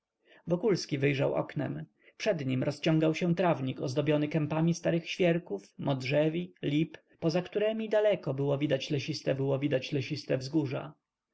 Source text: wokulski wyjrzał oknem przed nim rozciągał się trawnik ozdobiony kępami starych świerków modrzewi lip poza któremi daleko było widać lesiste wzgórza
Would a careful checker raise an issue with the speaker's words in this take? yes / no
yes